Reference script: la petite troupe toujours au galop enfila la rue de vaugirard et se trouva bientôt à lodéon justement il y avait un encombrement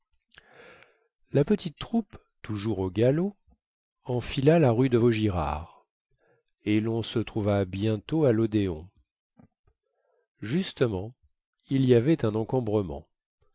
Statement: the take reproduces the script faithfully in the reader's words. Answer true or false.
false